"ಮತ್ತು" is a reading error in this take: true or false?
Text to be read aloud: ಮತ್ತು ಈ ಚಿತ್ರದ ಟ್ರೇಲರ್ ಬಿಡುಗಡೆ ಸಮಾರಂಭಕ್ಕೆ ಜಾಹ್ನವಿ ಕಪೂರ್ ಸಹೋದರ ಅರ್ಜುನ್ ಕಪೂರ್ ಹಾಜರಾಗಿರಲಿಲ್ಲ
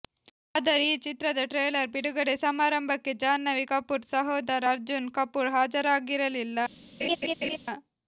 true